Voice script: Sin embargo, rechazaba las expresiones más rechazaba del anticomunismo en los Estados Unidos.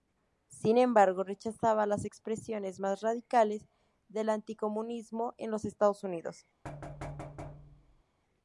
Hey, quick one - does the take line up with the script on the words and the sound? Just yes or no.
no